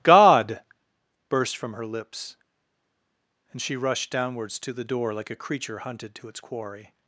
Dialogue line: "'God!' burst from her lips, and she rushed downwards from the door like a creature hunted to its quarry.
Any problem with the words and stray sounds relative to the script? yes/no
yes